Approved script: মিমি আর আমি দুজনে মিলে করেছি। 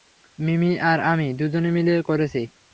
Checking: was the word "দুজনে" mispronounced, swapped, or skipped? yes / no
no